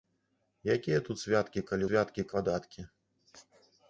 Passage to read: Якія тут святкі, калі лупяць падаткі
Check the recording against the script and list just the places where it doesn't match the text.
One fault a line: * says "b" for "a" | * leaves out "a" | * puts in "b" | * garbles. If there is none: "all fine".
* says "святкі" for "лупяць"